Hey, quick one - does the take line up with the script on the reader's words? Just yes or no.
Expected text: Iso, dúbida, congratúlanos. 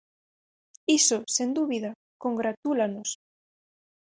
no